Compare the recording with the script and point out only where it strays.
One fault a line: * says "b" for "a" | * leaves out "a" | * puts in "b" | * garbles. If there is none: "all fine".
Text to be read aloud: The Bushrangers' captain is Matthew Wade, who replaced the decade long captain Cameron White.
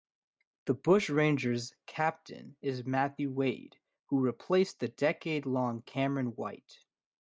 * leaves out "captain"